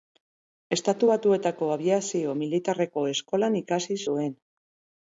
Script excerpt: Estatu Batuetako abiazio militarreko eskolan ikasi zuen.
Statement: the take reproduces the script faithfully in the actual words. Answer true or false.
true